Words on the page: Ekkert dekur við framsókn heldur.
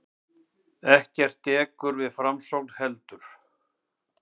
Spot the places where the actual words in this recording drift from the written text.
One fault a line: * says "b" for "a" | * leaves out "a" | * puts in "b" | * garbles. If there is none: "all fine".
all fine